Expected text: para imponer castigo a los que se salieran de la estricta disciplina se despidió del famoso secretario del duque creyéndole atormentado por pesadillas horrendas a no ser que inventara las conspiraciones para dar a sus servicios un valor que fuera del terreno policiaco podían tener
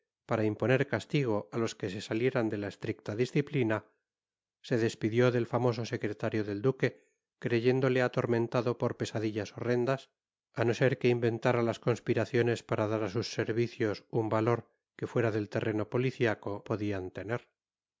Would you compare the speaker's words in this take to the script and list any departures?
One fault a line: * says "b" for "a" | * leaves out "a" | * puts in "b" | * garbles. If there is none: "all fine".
all fine